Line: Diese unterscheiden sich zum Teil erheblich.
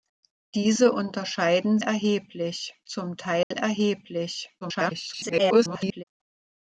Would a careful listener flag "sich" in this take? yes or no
yes